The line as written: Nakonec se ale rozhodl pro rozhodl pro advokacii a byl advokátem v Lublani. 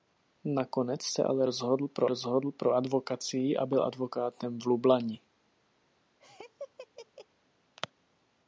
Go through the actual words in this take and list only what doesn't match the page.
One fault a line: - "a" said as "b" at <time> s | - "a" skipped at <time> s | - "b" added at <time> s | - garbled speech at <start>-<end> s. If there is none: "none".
none